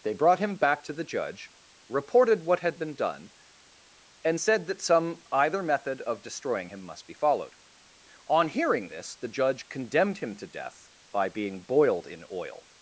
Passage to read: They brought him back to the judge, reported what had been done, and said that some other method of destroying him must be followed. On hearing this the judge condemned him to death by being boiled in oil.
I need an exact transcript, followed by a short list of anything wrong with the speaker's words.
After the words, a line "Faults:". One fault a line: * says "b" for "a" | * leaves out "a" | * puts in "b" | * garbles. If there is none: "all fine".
They brought him back to the judge, reported what had been done, and said that some either method of destroying him must be followed. On hearing this the judge condemned him to death by being boiled in oil.
Faults:
* says "either" for "other"